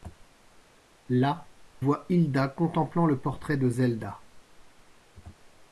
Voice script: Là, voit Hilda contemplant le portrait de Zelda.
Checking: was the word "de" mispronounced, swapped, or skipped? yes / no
no